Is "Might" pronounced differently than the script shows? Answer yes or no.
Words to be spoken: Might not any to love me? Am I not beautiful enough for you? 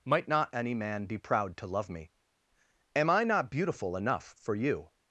no